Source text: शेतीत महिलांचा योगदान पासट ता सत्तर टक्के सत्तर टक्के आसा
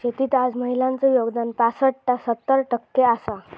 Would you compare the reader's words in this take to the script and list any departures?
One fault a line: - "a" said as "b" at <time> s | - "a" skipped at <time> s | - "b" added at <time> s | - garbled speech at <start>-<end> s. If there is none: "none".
- "आज" added at 0.3 s
- "सत्तर टक्के" skipped at 3.0 s